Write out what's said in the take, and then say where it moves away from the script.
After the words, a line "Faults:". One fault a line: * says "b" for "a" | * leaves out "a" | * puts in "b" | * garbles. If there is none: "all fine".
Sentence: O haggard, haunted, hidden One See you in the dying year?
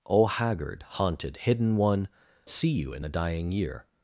O haggard, haunted, hidden One See you in the dying year?
Faults:
all fine